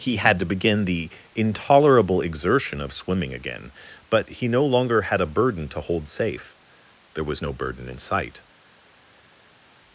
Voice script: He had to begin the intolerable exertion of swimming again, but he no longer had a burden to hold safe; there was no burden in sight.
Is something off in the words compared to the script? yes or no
no